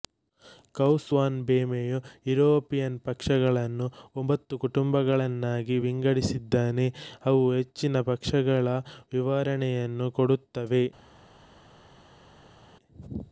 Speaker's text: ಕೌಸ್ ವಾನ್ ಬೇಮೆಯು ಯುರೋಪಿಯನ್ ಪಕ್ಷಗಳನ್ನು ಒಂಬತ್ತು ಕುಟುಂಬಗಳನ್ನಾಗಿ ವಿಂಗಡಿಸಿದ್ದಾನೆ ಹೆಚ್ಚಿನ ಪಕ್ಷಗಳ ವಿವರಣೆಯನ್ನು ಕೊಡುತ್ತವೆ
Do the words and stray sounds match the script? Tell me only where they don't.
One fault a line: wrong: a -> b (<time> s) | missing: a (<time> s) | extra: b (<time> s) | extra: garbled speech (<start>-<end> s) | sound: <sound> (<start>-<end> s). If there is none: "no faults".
extra: ಅವು (7.2 s)